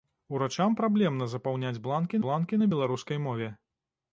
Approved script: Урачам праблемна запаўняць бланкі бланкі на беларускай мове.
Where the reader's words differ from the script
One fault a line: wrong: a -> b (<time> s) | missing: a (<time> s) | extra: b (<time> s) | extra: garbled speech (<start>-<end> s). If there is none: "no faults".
no faults